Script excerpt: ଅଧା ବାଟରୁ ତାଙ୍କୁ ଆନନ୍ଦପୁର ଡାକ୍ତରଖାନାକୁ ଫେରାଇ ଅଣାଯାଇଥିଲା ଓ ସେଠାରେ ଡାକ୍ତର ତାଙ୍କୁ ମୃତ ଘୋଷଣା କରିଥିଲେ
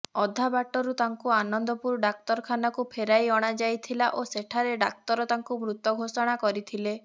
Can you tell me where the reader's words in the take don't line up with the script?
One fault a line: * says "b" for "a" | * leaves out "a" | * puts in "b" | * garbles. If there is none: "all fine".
all fine